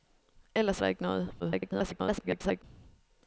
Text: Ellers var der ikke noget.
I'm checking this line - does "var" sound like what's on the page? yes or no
no